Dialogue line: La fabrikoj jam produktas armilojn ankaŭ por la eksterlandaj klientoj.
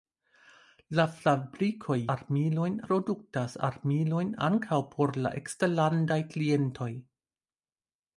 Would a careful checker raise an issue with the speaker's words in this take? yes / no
yes